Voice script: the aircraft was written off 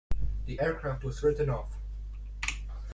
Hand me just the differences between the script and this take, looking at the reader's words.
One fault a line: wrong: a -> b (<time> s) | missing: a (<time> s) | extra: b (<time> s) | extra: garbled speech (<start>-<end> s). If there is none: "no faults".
no faults